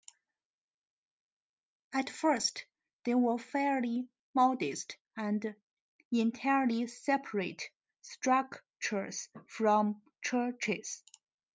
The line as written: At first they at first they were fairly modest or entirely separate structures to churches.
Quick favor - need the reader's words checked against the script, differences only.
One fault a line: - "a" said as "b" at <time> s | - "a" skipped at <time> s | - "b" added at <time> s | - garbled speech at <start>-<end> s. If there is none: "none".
- "at first they" skipped at 3.1 s
- "or" said as "and" at 5.1 s
- "to" said as "from" at 9.5 s